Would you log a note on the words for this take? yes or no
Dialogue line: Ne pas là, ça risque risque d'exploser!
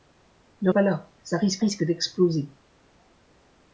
no